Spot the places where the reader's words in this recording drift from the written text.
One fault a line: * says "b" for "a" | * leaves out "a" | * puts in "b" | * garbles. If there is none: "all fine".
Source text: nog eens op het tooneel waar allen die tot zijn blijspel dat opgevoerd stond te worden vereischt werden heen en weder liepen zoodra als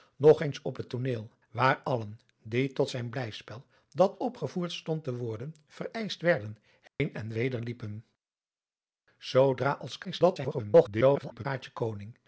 * garbles